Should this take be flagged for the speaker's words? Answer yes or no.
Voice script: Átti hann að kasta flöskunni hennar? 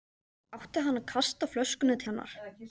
no